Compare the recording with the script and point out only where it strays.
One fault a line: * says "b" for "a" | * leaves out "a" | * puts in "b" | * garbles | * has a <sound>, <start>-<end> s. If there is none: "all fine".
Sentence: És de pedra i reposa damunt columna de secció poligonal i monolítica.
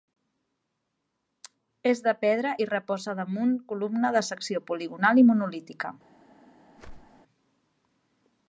* has a whoosh, 6.8-7.2 s